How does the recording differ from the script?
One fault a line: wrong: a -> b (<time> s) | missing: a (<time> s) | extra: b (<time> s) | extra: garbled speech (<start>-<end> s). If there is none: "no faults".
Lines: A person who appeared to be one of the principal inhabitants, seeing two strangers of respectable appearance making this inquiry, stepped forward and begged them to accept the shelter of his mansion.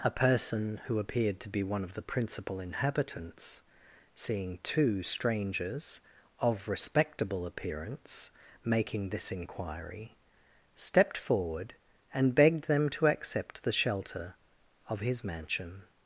no faults